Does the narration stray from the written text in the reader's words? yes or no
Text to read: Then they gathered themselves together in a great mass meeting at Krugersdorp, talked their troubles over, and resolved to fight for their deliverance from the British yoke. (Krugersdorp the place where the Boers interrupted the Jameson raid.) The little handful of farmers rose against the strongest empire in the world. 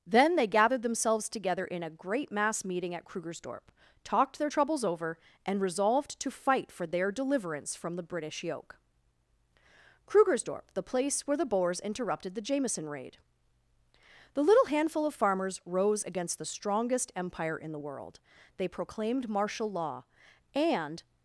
yes